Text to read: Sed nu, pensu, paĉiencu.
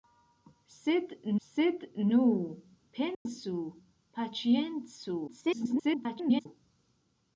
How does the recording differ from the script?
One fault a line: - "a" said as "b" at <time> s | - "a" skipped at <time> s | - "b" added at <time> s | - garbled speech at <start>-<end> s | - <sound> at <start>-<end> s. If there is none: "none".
- "sed" added at 1.5 s
- dropout at 3.1-3.3 s
- garbled speech at 5.3-6.5 s